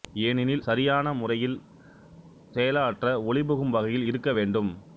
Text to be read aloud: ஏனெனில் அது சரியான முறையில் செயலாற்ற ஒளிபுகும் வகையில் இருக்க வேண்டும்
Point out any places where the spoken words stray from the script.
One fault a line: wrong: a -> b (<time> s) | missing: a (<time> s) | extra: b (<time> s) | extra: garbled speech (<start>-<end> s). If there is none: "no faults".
missing: அது (0.6 s)